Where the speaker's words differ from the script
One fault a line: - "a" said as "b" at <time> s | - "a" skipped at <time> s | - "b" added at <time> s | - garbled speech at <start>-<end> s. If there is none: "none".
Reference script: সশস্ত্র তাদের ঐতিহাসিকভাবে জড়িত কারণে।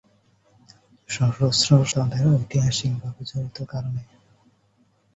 none